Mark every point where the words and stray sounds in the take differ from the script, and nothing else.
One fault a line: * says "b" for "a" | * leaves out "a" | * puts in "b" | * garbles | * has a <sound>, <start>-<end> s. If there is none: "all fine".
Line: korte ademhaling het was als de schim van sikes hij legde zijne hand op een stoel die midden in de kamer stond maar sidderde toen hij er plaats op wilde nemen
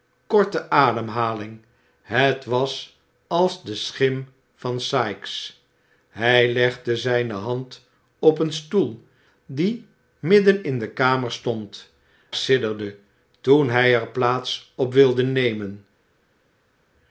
* leaves out "maar"